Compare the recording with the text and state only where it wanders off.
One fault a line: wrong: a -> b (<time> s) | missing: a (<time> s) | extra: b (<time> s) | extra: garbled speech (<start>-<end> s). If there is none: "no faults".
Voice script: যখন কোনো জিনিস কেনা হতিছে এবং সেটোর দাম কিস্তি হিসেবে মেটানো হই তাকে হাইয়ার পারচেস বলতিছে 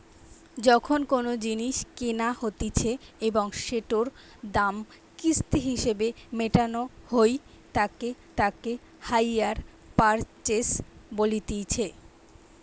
extra: তাকে (8.4 s)